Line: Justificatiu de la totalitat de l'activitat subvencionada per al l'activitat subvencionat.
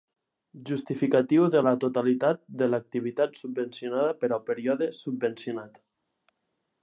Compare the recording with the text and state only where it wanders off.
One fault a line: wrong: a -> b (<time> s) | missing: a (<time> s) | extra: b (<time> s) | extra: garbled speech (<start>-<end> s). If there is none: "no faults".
wrong: l'activitat -> període (4.5 s)